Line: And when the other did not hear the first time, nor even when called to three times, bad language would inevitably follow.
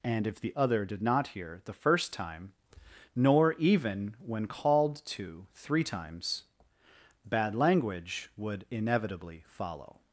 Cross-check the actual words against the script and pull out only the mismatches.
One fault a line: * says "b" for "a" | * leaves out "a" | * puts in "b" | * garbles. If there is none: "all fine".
* says "if" for "when"